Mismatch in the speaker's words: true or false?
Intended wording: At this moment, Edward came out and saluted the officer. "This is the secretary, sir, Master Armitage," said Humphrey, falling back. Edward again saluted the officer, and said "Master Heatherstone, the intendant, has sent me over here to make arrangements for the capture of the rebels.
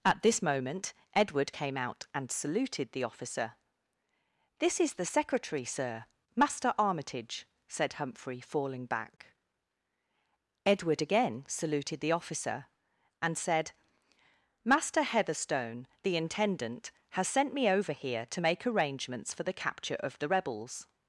false